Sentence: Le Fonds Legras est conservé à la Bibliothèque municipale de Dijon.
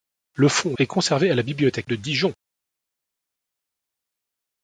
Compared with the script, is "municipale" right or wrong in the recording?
wrong